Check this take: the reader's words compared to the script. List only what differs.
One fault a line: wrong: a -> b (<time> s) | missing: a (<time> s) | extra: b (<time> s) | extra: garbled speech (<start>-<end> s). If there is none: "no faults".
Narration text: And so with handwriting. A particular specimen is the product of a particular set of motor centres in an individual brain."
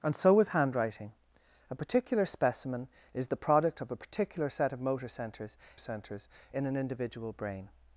extra: centres (5.8 s)